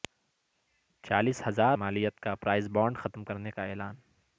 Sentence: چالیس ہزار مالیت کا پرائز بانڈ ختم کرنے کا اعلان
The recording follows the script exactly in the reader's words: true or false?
true